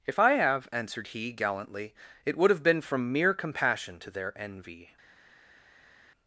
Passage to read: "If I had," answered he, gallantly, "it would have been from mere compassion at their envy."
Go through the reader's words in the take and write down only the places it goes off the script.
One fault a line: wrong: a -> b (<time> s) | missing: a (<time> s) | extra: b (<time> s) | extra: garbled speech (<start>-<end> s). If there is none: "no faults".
wrong: had -> have (0.3 s)
wrong: at -> to (4.0 s)